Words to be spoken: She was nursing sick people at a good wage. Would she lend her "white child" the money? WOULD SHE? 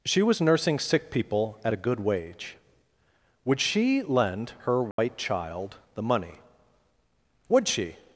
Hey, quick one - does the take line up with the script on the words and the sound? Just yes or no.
no